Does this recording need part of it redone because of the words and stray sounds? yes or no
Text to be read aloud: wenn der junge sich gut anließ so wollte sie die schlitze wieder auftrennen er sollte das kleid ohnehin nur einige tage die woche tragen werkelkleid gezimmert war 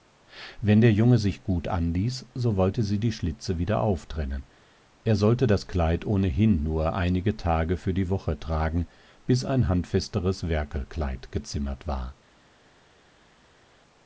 yes